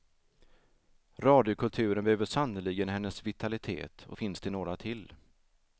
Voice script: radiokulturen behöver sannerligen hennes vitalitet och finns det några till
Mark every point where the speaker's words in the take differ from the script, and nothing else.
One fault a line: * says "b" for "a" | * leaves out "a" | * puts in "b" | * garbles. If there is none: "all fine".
all fine